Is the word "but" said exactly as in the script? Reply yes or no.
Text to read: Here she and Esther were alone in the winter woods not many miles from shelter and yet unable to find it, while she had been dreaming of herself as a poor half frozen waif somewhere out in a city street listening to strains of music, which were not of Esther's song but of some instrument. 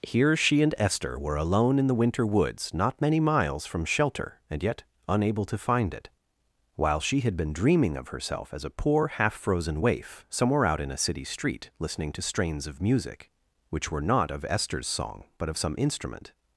yes